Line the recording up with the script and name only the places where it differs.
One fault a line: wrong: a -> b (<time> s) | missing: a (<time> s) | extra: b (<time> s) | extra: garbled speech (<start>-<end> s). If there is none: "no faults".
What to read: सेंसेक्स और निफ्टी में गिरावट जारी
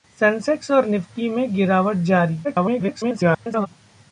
extra: garbled speech (2.4-3.7 s)